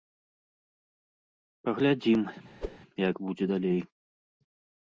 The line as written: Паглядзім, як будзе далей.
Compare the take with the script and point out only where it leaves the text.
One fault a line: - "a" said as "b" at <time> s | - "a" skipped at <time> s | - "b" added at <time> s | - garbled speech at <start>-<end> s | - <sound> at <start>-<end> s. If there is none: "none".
- whoosh at 2.6-2.8 s